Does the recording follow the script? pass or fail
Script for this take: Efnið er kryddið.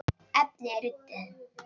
pass